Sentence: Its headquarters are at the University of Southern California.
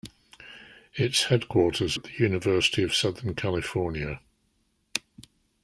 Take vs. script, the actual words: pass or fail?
fail